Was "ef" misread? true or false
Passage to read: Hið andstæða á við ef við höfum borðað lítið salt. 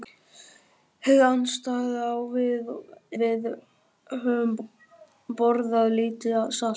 true